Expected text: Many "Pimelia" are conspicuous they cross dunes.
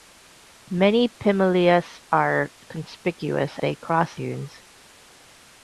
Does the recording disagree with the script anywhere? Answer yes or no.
no